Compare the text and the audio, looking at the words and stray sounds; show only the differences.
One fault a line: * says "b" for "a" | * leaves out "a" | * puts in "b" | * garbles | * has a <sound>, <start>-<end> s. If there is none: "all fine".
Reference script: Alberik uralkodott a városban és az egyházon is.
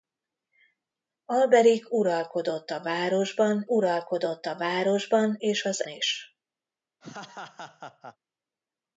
* puts in "uralkodott a városban"
* leaves out "egyházon"
* has a laugh, 7.0-8.2 s